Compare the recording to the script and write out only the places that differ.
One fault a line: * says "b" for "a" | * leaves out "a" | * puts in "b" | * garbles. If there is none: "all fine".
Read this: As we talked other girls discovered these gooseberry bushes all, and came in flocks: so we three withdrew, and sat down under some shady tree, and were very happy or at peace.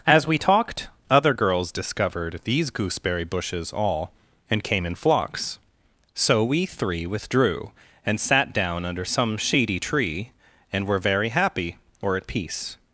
all fine